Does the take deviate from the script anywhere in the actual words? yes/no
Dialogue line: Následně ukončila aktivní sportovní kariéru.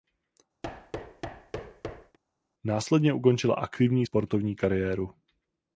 no